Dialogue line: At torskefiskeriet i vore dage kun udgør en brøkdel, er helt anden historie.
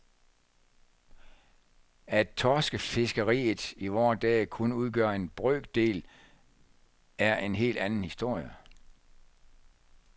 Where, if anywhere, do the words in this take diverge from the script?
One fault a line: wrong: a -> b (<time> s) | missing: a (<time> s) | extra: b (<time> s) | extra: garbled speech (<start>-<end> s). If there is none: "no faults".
extra: en (7.4 s)